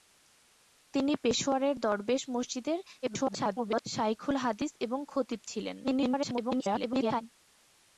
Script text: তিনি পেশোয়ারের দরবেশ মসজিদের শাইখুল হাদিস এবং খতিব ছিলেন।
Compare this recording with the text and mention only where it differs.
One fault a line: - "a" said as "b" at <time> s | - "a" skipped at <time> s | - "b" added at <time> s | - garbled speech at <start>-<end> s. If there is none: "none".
- garbled speech at 3.0-3.8 s
- garbled speech at 5.8-7.2 s